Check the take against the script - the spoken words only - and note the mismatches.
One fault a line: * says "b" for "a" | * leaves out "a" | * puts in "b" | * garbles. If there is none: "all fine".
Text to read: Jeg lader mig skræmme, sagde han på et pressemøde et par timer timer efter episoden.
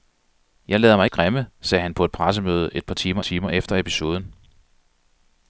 all fine